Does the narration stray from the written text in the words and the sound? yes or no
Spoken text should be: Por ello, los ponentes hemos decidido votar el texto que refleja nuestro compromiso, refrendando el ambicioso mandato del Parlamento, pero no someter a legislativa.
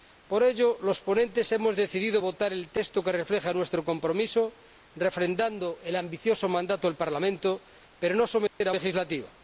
yes